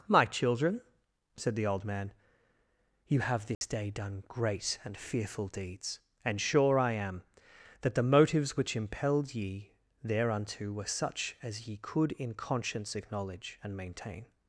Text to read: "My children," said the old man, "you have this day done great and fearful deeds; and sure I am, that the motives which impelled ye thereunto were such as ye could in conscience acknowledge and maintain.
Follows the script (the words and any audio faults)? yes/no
no